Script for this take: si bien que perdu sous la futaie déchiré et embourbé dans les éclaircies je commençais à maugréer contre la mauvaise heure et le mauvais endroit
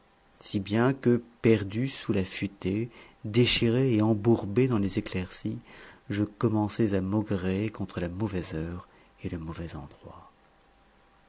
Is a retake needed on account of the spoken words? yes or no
no